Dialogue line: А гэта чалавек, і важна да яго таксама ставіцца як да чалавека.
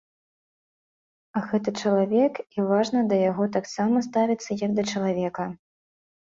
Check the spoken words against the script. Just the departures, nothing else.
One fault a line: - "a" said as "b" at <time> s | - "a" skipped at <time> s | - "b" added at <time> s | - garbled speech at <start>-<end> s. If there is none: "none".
none